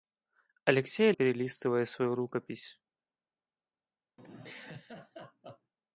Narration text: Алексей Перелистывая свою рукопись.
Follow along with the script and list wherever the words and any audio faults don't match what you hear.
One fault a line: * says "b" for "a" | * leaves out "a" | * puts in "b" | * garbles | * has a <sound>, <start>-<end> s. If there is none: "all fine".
* has a laugh, 4.2-5.7 s